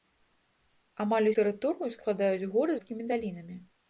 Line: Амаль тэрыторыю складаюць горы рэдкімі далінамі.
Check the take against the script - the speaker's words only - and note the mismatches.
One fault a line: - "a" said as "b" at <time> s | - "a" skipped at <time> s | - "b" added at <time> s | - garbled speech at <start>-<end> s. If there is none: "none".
none